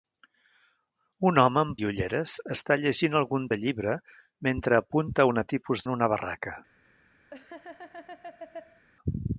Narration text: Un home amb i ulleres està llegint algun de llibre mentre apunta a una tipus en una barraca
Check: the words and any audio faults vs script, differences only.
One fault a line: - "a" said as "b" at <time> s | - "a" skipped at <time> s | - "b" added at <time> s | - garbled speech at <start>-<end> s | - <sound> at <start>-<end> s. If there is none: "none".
- laugh at 7.3-8.8 s